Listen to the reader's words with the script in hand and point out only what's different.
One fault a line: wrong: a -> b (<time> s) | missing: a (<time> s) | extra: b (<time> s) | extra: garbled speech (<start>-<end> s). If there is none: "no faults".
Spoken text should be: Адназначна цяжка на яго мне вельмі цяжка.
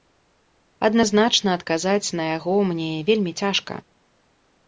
wrong: цяжка -> адказаць (1.6 s)